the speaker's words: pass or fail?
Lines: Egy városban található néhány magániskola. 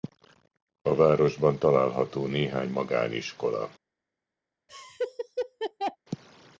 fail